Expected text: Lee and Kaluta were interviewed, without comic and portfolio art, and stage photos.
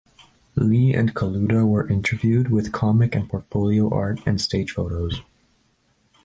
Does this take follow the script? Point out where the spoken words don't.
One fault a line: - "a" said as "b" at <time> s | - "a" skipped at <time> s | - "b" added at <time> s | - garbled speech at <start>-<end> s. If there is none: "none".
- "without" said as "with" at 2.5 s